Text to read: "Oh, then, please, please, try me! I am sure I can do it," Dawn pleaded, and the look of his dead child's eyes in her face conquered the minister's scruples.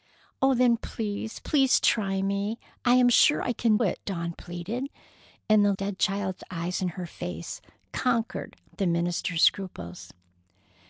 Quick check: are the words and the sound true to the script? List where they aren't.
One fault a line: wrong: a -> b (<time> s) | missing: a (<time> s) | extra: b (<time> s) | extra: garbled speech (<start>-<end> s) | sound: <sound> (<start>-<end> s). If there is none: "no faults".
missing: do (3.8 s)
missing: look of his (5.7 s)